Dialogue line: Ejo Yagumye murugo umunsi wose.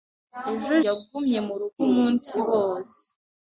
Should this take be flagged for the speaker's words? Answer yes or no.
no